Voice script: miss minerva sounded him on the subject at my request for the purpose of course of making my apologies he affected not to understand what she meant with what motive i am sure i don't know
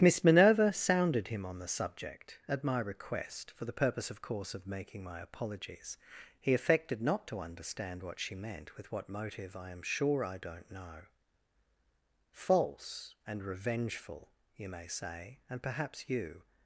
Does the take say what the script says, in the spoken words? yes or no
no